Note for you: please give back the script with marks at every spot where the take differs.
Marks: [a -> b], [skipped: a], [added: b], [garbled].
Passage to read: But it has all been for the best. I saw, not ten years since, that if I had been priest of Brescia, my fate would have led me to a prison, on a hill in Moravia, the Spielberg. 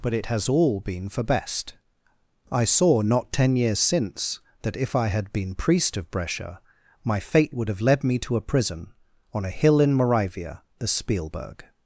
But it has all been for [skipped: the] best. I saw, not ten years since, that if I had been priest of Brescia, my fate would have led me to a prison, on a hill in Moravia, the Spielberg.